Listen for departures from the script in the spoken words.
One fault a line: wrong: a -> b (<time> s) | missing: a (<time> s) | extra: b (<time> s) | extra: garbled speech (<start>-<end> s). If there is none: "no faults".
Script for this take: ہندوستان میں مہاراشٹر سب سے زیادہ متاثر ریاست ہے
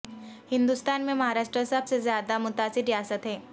no faults